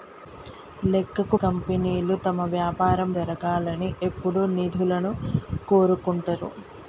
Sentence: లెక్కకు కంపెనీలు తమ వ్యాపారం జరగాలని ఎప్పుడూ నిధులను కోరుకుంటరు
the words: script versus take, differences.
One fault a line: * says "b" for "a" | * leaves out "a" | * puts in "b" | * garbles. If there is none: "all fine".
all fine